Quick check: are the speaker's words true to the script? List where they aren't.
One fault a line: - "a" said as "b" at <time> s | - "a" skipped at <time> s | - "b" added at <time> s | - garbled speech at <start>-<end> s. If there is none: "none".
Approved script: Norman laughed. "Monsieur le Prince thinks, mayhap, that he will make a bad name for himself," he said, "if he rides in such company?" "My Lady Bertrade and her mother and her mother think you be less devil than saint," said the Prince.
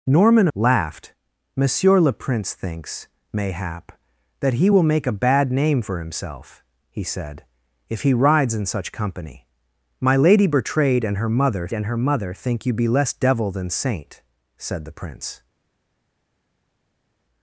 none